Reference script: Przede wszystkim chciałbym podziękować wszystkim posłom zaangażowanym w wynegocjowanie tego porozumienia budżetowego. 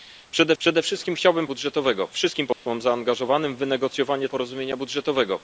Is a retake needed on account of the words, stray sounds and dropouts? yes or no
yes